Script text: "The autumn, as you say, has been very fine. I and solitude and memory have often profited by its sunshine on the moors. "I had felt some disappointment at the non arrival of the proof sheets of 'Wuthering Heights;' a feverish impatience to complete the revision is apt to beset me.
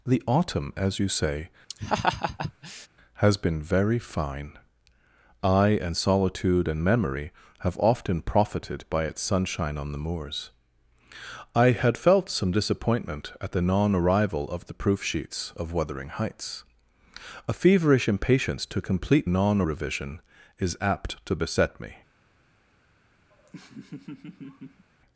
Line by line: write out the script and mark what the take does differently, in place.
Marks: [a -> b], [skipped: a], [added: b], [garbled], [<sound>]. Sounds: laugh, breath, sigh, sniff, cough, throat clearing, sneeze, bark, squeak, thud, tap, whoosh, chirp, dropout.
"The autumn, as you say, [laugh] has been very fine. I and solitude and memory have often profited by its sunshine on the moors. "I had felt some disappointment at the non arrival of the proof sheets of 'Wuthering Heights;' a feverish impatience to complete [the -> non] revision is apt to beset me. [laugh]